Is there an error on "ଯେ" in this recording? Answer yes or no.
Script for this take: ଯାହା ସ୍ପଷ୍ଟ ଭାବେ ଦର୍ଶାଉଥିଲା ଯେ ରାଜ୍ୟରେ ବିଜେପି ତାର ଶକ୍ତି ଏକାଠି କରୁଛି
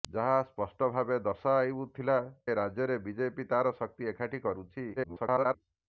yes